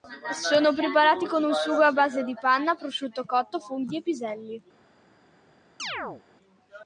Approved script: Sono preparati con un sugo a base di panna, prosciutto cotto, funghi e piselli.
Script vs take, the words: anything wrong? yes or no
no